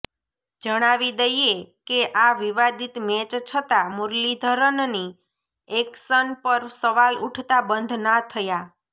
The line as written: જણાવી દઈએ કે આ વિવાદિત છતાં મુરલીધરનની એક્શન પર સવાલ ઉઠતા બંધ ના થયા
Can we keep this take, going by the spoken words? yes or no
no